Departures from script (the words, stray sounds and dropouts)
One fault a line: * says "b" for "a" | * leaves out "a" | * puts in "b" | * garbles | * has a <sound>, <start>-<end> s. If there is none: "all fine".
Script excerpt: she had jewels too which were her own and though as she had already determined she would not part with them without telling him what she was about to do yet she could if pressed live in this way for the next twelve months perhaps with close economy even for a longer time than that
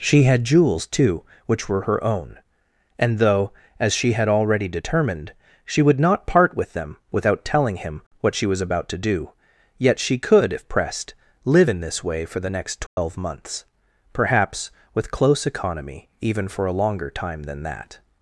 * has a dropout, 12.9-13.0 s